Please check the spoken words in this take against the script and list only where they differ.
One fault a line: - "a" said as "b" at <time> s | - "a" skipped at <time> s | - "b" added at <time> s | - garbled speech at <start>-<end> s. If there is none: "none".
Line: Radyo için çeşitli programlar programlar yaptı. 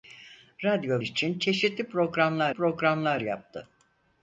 none